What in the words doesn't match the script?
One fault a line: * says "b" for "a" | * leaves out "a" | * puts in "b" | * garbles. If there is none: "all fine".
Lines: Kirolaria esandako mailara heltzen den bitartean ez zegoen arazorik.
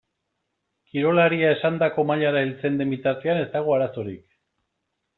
* says "dago" for "zegoen"